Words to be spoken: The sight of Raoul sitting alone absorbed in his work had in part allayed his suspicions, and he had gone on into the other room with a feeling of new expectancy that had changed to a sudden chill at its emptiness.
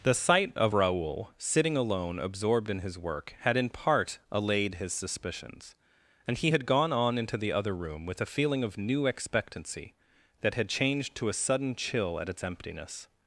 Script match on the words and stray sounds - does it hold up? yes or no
yes